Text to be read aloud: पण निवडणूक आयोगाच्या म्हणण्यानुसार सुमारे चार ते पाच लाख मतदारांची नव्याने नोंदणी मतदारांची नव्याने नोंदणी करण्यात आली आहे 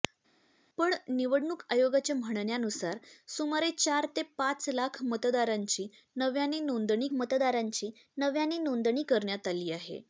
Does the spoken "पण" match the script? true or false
true